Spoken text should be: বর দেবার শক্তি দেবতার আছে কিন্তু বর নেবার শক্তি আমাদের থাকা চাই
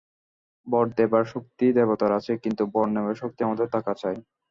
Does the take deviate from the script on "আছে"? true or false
false